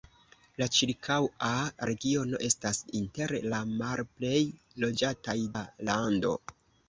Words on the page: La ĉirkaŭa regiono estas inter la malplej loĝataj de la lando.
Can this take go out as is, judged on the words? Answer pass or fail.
fail